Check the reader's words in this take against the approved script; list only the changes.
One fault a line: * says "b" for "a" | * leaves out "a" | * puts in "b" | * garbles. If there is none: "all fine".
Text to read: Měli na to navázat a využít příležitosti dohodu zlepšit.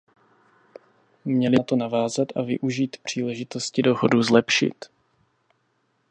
all fine